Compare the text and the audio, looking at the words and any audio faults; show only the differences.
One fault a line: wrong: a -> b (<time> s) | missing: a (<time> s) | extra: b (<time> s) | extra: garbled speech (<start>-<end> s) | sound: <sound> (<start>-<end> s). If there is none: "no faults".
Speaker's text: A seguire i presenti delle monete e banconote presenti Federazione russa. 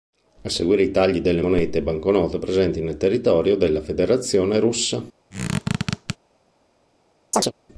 wrong: presenti -> tagli (0.9 s)
extra: nel territorio della (2.8 s)
sound: squeak (5.3-6.2 s)
sound: chirp (7.3-7.5 s)